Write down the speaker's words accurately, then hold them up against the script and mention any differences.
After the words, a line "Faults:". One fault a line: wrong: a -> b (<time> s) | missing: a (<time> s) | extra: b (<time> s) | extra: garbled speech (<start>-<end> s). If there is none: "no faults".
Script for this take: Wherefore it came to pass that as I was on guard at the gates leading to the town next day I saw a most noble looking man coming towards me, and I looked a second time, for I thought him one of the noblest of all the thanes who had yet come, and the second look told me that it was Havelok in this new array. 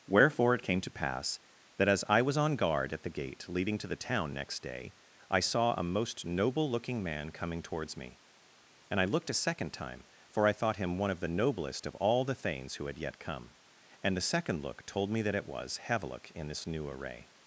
Wherefore it came to pass that as I was on guard at the gate leading to the town next day I saw a most noble looking man coming towards me, and I looked a second time, for I thought him one of the noblest of all the thanes who had yet come, and the second look told me that it was Havelok in this new array.
Faults:
wrong: gates -> gate (3.1 s)